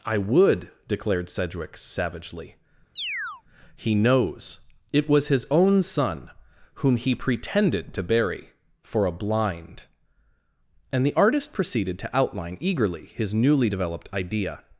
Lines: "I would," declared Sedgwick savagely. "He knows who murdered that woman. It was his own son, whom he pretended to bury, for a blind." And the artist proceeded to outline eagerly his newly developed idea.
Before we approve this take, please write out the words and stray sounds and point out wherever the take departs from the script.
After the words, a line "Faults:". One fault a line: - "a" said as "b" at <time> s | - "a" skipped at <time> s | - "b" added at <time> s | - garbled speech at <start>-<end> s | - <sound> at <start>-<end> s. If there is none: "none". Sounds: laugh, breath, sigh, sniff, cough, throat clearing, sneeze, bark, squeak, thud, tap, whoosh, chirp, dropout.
"I would," declared Sedgwick savagely. "He knows. It was his own son, whom he pretended to bury, for a blind." And the artist proceeded to outline eagerly his newly developed idea.
Faults:
- chirp at 3.0-3.4 s
- "who murdered that woman" skipped at 4.6 s